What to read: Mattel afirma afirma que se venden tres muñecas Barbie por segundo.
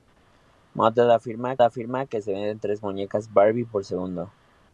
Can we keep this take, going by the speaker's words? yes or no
yes